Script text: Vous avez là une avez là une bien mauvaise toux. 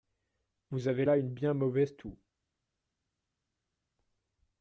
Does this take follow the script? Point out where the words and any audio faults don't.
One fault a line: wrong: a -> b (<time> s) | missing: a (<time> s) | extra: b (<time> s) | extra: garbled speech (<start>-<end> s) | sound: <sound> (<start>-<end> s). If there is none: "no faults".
missing: avez là une (1.3 s)